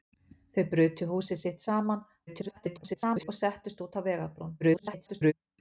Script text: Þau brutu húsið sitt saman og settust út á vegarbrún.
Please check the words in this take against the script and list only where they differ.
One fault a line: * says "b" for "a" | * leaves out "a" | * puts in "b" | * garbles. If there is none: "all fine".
* garbles
* garbles